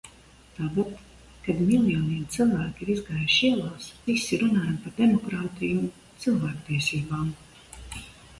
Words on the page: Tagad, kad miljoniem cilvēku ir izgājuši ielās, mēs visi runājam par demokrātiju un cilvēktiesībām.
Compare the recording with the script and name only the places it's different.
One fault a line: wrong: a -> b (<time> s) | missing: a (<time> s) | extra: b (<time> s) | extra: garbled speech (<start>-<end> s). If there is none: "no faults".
missing: mēs (3.9 s)